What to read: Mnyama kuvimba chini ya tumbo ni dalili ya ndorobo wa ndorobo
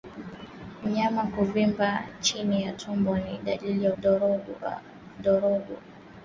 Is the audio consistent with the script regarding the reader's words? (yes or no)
yes